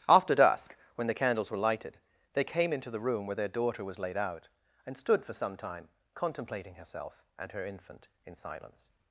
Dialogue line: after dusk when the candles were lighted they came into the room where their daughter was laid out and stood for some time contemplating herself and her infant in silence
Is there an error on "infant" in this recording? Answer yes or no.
no